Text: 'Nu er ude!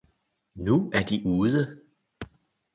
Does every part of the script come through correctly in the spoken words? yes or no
no